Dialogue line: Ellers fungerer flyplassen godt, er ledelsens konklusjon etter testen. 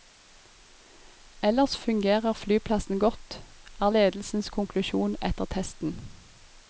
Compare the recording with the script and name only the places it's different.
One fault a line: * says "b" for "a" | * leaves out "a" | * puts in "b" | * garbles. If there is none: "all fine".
all fine